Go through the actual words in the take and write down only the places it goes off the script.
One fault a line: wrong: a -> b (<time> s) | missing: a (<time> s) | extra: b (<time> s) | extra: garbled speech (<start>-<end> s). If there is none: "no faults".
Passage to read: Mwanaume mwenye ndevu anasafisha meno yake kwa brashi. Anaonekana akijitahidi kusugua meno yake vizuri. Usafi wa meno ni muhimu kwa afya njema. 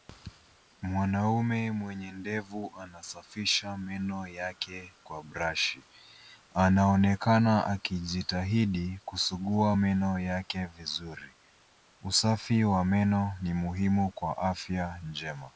no faults